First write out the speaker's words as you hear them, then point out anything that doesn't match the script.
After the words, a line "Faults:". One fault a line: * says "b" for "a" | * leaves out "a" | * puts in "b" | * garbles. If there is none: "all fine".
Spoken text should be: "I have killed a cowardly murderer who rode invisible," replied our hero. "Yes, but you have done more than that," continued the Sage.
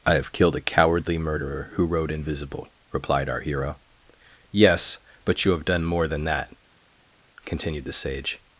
"I have killed a cowardly murderer who rode invisible," replied our hero. "Yes, but you have done more than that," continued the Sage.
Faults:
all fine